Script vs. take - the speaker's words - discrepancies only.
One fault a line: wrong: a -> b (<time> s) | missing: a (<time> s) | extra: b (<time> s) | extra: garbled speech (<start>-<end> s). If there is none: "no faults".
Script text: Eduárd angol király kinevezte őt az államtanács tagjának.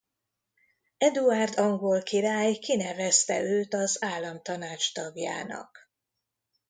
no faults